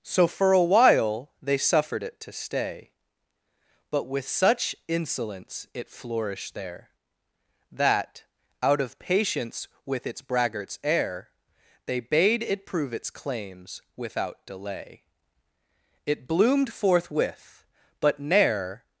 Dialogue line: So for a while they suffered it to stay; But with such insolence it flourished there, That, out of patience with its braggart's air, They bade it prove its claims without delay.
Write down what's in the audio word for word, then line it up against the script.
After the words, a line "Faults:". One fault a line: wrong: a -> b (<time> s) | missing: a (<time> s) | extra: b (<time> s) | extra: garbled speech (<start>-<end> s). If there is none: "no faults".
So for a while they suffered it to stay; But with such insolence it flourished there, That, out of patience with its braggart's air, They bade it prove its claims without delay. It bloomed forthwith; but ne'er
Faults:
extra: It bloomed forthwith but ne'er (16.1 s)